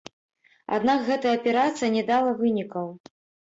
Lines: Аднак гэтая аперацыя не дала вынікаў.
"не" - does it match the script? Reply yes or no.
yes